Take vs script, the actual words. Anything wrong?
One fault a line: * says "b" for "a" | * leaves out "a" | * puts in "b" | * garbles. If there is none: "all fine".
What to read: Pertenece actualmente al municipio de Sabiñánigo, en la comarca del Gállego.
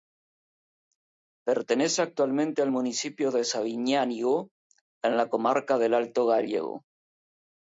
* puts in "Alto"